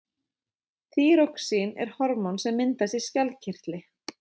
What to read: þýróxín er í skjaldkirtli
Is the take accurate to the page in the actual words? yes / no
no